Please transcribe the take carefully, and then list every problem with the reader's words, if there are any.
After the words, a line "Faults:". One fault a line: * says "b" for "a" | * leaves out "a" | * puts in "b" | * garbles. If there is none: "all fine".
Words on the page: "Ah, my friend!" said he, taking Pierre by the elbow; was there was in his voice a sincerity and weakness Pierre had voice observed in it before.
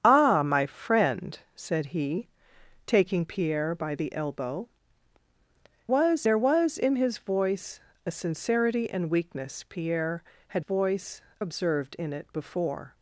"Ah, my friend!" said he, taking Pierre by the elbow; was there was in his voice a sincerity and weakness Pierre had voice observed in it before.
Faults:
all fine